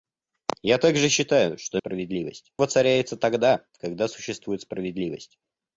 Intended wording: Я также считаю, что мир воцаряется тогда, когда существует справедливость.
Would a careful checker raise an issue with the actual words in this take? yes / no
yes